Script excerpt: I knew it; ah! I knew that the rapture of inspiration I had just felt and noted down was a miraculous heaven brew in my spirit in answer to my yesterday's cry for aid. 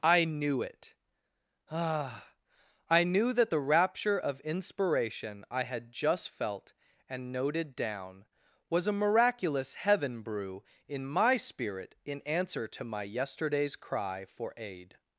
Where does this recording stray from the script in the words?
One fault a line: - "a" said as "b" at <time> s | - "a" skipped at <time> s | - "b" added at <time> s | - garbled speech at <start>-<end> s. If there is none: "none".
none